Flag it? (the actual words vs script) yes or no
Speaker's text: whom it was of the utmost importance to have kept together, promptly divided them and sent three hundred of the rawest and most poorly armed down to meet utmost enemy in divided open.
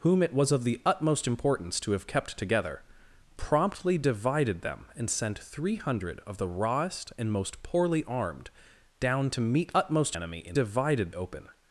no